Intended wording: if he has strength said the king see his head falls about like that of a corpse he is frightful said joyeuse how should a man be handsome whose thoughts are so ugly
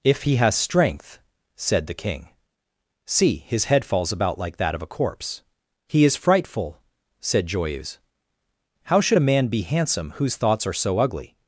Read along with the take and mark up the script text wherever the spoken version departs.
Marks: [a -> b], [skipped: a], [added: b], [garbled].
if he has strength said the king see his head falls about like that of a corpse he is frightful said joyeuse how should a man be handsome whose thoughts are so ugly